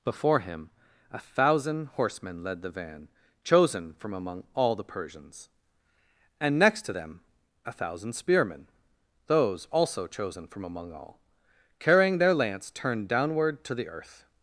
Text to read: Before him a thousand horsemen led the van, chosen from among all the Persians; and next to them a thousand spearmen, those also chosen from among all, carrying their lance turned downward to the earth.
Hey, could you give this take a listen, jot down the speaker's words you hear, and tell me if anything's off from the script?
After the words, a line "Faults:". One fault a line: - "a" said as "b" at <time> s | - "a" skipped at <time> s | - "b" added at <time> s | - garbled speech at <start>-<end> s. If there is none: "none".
Before him a thousand horsemen led the van, chosen from among all the Persians; and next to them a thousand spearmen, those also chosen from among all, carrying their lance turned downward to the earth.
Faults:
none